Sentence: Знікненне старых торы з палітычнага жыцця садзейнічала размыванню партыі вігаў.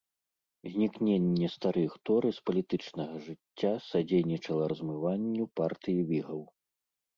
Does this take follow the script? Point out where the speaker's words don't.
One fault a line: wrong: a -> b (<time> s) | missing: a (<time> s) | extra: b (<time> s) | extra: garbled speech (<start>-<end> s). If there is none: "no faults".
no faults